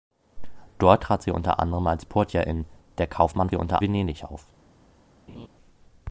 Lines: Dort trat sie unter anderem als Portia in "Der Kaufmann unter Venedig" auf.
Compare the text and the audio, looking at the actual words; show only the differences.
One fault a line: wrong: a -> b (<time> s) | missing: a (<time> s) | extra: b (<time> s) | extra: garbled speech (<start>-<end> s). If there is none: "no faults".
no faults